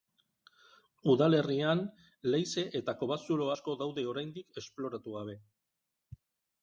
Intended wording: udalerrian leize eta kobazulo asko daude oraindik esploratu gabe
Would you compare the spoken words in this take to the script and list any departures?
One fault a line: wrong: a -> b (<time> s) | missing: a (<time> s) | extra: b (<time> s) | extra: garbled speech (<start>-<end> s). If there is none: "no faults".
no faults